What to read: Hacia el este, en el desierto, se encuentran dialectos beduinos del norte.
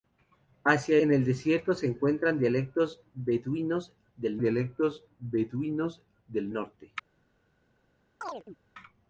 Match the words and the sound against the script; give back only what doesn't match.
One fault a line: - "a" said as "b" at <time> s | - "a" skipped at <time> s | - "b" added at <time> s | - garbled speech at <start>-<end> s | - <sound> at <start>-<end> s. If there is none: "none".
- "el este" skipped at 1.0 s
- "dialectos beduinos del" added at 4.4 s
- chirp at 8.2-8.6 s